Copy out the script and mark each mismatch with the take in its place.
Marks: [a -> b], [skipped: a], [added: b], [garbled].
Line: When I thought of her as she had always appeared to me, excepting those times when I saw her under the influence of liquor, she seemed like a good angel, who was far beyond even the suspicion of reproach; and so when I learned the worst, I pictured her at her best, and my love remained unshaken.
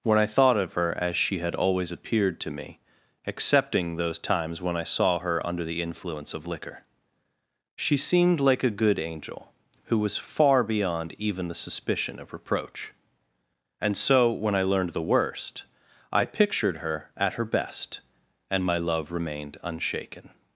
When I thought of her as she had always appeared to me, excepting those times when I saw her under the influence of liquor, she seemed like a good angel, who was far beyond even the suspicion of reproach; and so when I learned the worst, I pictured her at her best, and my love remained unshaken.